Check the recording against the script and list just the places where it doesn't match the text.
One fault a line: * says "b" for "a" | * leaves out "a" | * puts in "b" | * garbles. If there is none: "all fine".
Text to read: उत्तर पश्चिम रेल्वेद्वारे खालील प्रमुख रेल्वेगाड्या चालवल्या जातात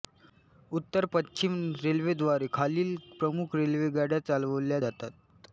all fine